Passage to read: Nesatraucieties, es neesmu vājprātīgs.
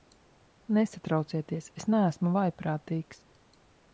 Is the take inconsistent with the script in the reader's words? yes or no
no